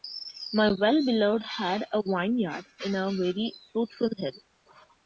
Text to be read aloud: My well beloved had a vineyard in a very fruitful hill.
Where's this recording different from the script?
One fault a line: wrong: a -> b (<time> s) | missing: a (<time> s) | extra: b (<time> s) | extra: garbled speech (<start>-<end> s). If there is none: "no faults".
no faults